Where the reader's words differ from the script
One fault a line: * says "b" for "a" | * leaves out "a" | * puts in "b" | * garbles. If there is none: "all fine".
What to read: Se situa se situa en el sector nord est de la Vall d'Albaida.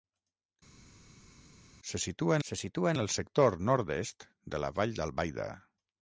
all fine